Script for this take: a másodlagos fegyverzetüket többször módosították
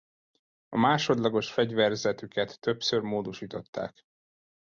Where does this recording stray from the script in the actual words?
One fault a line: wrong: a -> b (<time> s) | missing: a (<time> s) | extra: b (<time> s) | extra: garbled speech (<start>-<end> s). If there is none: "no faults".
no faults